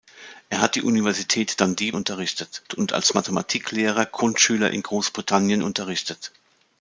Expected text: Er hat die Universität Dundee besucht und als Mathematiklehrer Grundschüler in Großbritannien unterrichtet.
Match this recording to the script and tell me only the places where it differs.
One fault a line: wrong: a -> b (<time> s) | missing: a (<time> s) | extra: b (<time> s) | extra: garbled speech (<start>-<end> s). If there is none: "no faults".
wrong: besucht -> unterrichtet (1.9 s)